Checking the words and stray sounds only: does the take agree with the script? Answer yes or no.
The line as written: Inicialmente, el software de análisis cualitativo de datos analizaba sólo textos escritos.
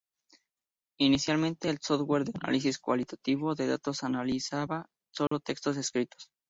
no